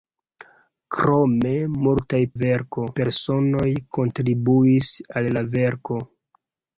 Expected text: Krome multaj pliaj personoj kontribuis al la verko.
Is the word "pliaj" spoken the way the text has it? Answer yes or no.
no